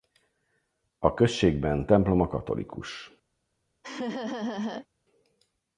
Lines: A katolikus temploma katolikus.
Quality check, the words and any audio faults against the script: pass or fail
fail